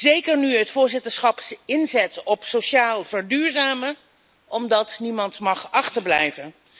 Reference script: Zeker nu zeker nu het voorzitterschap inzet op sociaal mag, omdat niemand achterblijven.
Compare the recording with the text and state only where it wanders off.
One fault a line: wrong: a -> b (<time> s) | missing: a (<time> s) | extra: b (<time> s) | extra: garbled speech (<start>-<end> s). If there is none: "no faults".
missing: zeker nu (0.6 s)
wrong: mag -> verduurzamen (3.0 s)
extra: mag (5.4 s)